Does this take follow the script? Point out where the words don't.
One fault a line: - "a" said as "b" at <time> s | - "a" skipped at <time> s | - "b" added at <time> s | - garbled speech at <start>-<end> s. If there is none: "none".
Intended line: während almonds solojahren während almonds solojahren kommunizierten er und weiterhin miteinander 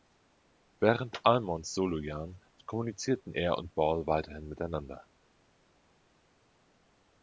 - "während almonds solojahren" skipped at 2.4 s
- "ball" added at 3.7 s